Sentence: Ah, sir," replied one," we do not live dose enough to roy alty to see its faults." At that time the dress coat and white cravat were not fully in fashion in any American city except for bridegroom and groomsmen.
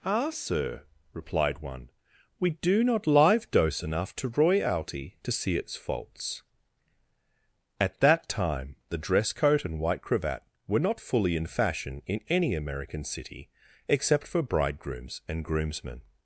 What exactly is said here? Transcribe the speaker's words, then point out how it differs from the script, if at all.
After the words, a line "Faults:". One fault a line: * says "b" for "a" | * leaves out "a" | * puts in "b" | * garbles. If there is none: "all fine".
Ah, sir," replied one," we do not live dose enough to roy alty to see its faults." At that time the dress coat and white cravat were not fully in fashion in any American city except for bridegrooms and groomsmen.
Faults:
* says "bridegrooms" for "bridegroom"